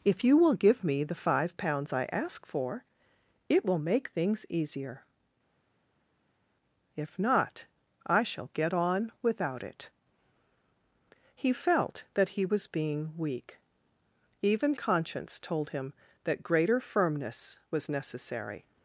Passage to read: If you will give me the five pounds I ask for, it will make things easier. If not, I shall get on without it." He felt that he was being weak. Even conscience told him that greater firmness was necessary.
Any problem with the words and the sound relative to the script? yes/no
no